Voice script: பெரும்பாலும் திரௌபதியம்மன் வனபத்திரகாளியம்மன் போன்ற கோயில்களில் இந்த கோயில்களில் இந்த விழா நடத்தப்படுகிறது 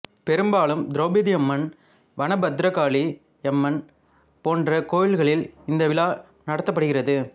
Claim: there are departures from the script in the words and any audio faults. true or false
true